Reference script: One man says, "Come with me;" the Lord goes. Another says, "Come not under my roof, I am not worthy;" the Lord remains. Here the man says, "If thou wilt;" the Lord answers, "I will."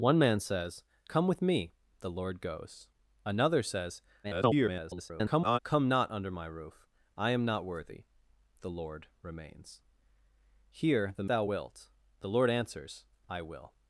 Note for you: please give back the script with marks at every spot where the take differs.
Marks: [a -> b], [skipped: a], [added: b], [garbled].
One man says, "Come with me;" the Lord goes. Another says, [garbled] "Come not under my roof, I am not worthy;" the Lord remains. Here the [skipped: man says, "If] thou wilt;" the Lord answers, "I will."